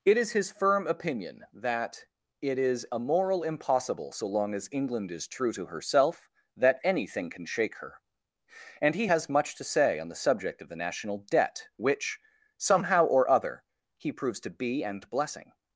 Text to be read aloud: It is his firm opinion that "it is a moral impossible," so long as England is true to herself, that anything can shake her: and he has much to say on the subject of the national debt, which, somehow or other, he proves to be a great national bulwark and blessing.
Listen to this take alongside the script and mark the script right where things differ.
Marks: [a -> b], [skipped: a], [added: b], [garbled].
It is his firm opinion that "it is a moral impossible," so long as England is true to herself, that anything can shake her: and he has much to say on the subject of the national debt, which, somehow or other, he proves to be [skipped: a great national bulwark] and blessing.